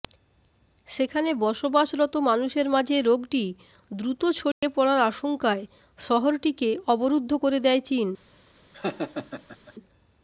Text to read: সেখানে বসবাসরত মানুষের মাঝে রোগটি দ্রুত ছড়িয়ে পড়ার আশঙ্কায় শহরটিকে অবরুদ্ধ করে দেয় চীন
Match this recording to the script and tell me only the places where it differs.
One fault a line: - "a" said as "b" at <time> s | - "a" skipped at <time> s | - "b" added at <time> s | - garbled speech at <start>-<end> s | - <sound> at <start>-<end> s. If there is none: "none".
- dropout at 4.5-4.6 s
- laugh at 8.7-9.7 s